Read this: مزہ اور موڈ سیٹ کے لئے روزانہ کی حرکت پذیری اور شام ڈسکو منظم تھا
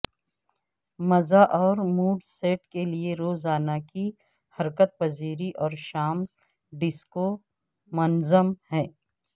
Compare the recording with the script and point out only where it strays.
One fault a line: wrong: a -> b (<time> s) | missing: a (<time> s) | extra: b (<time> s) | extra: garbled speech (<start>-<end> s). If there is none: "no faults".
wrong: تھا -> ہے (8.7 s)